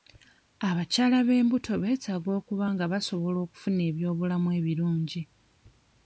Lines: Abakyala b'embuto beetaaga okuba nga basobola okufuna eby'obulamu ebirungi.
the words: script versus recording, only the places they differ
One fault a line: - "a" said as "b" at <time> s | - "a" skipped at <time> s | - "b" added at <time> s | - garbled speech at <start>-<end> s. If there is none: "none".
none